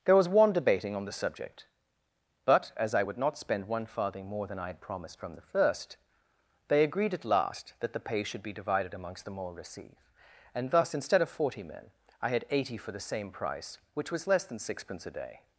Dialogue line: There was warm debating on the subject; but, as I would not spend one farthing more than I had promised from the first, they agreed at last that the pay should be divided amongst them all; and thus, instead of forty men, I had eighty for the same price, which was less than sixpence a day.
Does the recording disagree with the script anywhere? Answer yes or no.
yes